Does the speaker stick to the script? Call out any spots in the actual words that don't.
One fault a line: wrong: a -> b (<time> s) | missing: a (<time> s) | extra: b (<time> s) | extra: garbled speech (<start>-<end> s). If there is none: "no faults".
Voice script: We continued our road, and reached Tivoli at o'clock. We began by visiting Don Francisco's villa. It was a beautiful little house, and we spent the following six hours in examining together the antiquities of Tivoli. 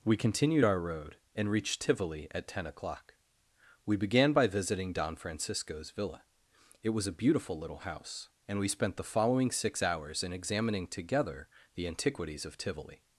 extra: ten (2.5 s)